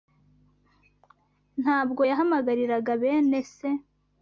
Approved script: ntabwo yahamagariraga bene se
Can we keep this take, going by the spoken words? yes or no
yes